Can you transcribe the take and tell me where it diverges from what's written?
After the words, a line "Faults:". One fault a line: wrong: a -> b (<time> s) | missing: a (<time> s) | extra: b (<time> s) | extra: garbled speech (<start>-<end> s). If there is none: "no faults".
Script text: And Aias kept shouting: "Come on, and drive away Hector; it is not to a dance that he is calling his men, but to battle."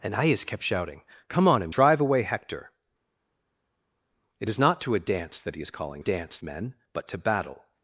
And Aias kept shouting: "Come on, and drive away Hector; it is not to a dance that he is calling dance men, but to battle."
Faults:
wrong: his -> dance (6.0 s)